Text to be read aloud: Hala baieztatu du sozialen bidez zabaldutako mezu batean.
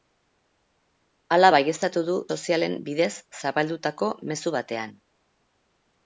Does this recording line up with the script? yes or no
yes